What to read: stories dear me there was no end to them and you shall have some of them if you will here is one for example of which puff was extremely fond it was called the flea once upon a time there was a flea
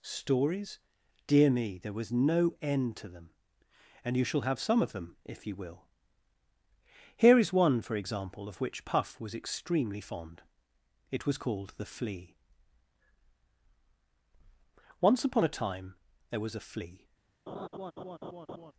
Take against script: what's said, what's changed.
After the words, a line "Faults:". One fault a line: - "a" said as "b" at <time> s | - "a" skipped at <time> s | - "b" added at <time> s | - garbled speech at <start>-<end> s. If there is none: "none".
stories dear me there was no end to them and you shall have some of them if you will here is one for example of which puff was extremely fond it was called the flea once upon a time there was a flea
Faults:
none